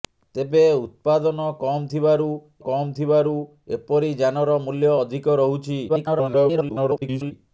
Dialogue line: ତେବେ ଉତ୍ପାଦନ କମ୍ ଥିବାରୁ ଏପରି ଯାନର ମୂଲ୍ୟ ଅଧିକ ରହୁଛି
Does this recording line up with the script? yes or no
no